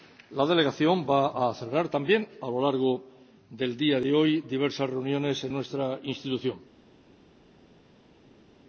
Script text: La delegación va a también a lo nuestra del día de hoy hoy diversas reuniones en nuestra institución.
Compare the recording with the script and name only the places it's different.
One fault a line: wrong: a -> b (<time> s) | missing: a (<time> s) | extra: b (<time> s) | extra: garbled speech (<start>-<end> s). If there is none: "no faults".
extra: celebrar (1.5 s)
wrong: nuestra -> largo (2.6 s)
missing: hoy (4.4 s)